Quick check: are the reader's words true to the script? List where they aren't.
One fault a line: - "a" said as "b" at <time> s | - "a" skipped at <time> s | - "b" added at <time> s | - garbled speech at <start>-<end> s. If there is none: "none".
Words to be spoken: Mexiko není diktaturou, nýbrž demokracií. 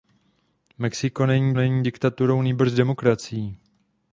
- "není" added at 1.5 s